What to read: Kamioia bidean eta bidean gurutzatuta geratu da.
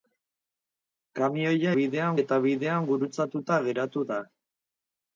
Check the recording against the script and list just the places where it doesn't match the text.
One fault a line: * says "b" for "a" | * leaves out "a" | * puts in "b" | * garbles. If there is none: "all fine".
all fine